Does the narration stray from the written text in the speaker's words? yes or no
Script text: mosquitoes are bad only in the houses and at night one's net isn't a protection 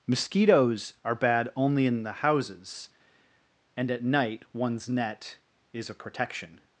yes